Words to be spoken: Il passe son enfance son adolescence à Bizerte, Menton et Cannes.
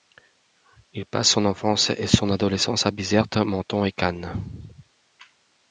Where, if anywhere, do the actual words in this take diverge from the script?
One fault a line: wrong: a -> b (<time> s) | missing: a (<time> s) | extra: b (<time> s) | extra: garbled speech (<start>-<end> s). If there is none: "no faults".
extra: et (1.9 s)